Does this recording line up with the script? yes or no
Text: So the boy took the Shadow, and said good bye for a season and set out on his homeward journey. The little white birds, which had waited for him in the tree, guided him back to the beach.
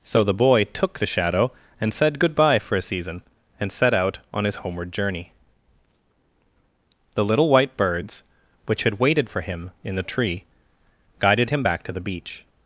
yes